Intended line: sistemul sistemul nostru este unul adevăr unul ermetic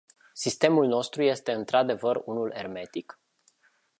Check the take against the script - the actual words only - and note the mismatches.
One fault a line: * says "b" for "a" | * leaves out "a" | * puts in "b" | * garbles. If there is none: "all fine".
* leaves out "sistemul"
* says "într" for "unul"